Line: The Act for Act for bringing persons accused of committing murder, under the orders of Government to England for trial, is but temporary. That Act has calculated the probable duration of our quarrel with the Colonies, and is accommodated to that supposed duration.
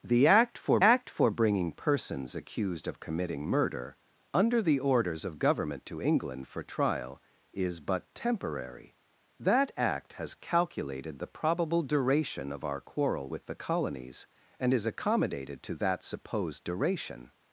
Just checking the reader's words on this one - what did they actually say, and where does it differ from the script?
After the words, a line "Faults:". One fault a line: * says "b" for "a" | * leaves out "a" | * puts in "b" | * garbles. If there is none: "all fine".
The Act for Act for bringing persons accused of committing murder, under the orders of Government to England for trial, is but temporary. That Act has calculated the probable duration of our quarrel with the Colonies, and is accommodated to that supposed duration.
Faults:
all fine